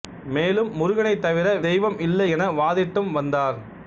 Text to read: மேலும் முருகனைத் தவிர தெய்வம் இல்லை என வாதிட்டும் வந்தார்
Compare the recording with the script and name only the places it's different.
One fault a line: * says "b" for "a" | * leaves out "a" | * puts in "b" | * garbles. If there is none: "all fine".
all fine